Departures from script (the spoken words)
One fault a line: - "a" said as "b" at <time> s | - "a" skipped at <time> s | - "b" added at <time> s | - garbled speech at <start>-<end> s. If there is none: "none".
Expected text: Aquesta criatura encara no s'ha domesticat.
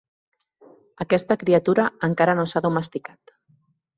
none